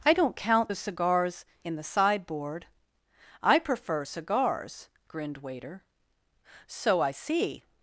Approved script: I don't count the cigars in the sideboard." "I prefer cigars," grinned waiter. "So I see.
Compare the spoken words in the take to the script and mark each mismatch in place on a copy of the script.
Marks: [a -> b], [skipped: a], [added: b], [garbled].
I don't count the cigars in the sideboard." "I prefer cigars," grinned waiter. "So I see.